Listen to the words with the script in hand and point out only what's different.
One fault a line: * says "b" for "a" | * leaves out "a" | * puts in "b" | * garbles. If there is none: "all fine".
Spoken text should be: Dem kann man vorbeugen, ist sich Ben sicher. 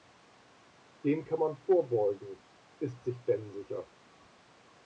all fine